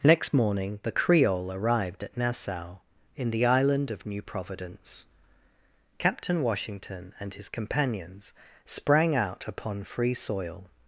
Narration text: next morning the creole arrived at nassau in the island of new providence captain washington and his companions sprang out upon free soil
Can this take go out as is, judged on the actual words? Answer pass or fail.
pass